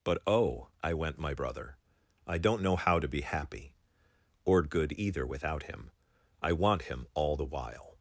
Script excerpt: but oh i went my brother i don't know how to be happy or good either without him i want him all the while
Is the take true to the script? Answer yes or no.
yes